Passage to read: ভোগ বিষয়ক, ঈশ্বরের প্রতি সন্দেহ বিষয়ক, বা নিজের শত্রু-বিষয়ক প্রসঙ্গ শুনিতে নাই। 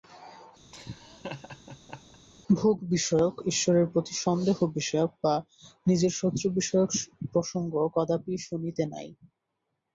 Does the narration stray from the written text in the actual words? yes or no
yes